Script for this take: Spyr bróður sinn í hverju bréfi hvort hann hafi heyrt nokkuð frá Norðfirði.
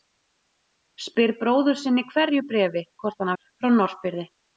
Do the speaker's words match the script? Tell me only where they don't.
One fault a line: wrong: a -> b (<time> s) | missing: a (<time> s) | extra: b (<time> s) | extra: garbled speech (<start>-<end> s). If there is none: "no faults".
missing: hafi heyrt nokkuð (3.3 s)